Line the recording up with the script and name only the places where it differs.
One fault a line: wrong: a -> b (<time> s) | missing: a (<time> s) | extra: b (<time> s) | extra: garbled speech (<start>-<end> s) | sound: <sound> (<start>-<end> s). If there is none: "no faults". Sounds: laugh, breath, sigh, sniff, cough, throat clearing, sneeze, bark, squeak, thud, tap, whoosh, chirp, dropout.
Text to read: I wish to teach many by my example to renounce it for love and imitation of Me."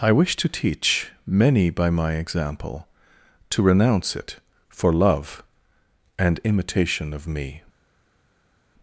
no faults